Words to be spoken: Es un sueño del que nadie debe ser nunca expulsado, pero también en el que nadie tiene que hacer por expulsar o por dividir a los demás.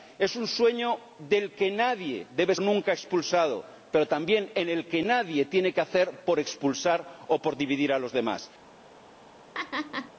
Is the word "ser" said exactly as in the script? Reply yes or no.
no